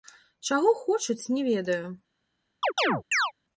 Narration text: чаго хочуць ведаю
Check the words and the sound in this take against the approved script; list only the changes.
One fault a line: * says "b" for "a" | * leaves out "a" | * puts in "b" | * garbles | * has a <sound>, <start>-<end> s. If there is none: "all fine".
* puts in "не"
* has a chirp, 2.6-3.3 s